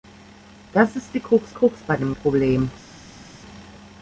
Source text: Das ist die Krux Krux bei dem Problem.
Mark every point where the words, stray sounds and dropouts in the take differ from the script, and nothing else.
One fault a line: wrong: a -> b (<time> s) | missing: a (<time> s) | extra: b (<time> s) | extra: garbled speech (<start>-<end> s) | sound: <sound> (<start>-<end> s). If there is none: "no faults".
no faults